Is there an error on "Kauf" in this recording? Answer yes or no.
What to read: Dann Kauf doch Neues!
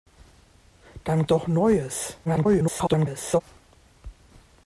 yes